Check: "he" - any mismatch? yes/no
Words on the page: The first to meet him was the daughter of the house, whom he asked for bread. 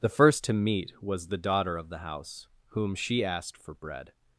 yes